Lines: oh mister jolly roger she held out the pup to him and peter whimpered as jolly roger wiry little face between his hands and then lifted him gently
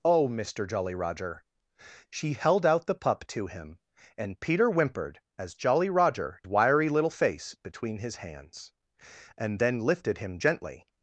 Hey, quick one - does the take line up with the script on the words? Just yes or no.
yes